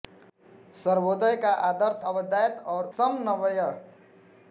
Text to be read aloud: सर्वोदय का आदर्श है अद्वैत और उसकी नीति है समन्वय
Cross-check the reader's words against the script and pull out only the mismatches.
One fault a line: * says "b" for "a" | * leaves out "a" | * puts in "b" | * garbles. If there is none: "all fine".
* leaves out "है"
* leaves out "उसकी नीति है"